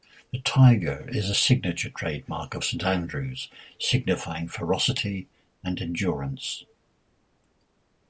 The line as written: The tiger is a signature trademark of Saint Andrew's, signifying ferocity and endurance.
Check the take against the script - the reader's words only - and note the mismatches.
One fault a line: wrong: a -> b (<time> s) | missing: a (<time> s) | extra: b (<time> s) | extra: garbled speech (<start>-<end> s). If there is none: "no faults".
no faults